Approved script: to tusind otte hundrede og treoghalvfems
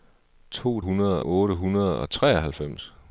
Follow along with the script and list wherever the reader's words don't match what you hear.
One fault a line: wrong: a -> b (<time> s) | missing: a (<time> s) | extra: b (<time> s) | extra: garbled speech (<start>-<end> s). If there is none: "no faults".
wrong: tusind -> hundrede (0.8 s)